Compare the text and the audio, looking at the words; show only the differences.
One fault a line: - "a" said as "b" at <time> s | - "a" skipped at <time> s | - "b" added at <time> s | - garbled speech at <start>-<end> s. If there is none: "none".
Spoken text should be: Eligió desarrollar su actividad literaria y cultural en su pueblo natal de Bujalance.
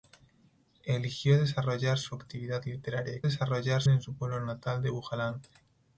- "cultural" said as "desarrollar" at 3.2 s